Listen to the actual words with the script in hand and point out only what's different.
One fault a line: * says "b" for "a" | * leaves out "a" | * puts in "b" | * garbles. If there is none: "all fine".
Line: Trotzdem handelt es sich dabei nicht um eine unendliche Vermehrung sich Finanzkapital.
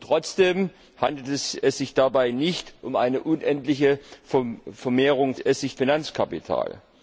all fine